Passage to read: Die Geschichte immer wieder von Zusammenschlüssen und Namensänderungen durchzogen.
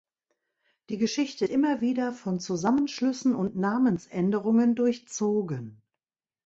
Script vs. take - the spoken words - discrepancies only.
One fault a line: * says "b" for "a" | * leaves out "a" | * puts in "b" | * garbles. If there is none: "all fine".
all fine